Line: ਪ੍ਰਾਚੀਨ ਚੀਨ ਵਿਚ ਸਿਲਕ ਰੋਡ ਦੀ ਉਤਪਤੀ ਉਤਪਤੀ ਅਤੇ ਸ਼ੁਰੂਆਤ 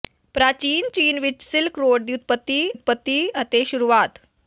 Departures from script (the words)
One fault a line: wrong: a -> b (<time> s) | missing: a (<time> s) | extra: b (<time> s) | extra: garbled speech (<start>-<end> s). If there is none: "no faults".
no faults